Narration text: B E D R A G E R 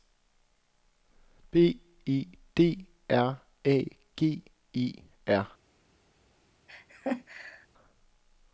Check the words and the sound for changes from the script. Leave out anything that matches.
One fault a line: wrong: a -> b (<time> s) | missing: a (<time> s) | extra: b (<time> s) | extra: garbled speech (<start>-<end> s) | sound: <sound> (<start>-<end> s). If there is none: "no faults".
sound: laugh (6.7-7.7 s)